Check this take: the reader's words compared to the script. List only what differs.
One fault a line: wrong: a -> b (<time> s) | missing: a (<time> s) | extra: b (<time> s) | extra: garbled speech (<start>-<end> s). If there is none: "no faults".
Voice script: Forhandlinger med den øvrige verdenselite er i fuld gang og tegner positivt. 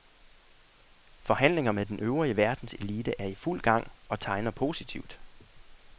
no faults